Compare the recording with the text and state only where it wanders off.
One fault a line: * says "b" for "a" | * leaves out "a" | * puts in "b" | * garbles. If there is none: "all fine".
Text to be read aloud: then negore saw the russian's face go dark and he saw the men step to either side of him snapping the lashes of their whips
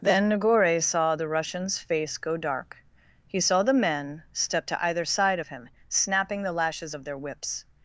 * leaves out "and"